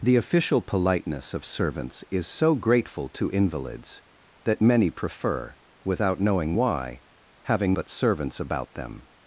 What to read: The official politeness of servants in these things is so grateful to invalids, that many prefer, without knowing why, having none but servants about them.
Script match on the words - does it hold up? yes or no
no